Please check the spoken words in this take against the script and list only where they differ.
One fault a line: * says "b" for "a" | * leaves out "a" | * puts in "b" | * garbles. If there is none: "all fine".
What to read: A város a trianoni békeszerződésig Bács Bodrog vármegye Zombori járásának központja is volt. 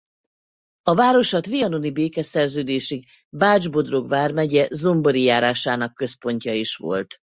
all fine